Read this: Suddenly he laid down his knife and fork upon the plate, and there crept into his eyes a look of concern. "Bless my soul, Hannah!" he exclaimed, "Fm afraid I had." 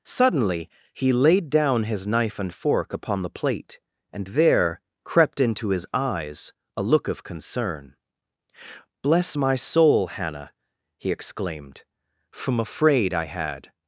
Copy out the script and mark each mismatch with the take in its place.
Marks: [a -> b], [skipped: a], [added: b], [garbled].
Suddenly he laid down his knife and fork upon the plate, and there crept into his eyes a look of concern. "Bless my soul, Hannah!" he exclaimed, ["Fm -> From] afraid I had."